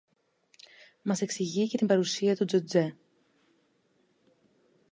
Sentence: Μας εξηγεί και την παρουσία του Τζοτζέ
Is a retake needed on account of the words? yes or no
no